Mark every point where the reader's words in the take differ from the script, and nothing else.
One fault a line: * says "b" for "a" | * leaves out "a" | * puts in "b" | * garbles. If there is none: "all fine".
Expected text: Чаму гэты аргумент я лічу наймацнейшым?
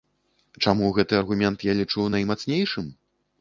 all fine